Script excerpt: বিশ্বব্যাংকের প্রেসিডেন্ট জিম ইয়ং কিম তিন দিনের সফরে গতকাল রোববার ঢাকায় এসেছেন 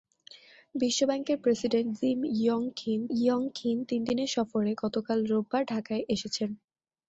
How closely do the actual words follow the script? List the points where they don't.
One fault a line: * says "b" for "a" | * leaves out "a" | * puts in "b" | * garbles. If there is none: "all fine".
* puts in "ইয়ং কিম"